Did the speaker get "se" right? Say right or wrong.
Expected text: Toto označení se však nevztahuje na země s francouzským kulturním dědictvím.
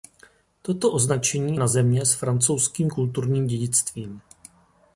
wrong